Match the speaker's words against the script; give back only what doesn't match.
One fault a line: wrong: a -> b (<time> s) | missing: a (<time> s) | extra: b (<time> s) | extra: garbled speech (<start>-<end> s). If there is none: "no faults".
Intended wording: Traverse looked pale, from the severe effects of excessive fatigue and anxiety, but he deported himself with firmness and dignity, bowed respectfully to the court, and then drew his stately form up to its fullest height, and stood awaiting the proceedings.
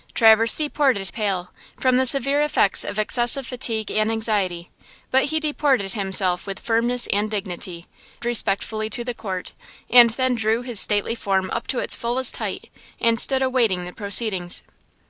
wrong: looked -> deported (0.6 s)
missing: bowed (7.9 s)